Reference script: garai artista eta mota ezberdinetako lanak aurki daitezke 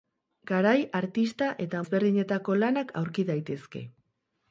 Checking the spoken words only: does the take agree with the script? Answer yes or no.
no